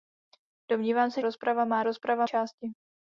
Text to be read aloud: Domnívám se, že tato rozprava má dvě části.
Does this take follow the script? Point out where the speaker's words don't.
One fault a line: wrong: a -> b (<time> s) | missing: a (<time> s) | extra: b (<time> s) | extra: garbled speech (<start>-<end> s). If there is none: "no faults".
missing: že tato (1.2 s)
wrong: dvě -> rozprava (1.8 s)